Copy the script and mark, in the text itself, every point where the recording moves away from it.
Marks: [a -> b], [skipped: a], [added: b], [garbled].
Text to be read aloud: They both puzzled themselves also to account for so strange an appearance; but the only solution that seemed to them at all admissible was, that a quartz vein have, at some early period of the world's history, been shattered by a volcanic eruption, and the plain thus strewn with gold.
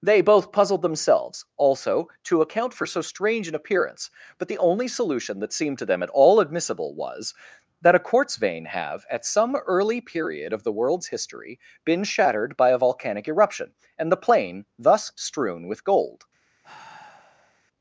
They both puzzled themselves also to account for so strange an appearance; but the only solution that seemed to them at all admissible was, that a quartz vein have, at some early period of the world's history, been shattered by a volcanic eruption, and the plain thus strewn with gold.